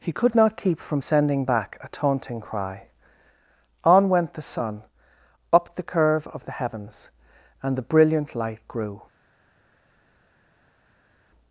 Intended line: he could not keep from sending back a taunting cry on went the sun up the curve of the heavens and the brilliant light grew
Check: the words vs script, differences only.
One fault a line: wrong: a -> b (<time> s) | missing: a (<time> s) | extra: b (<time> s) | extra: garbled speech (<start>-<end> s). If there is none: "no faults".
no faults